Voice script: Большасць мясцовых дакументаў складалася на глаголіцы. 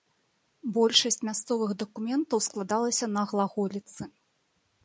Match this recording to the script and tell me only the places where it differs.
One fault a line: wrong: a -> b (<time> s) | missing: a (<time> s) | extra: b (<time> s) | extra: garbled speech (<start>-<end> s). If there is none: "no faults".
no faults